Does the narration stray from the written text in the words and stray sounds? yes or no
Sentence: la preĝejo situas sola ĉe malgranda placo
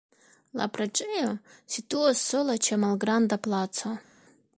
no